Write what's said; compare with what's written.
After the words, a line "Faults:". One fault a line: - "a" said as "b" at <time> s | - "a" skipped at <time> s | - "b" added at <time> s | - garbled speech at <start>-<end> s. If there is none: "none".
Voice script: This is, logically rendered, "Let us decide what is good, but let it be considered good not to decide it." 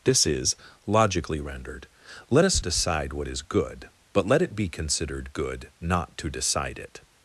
This is, logically rendered, "Let us decide what is good, but let it be considered good not to decide it."
Faults:
none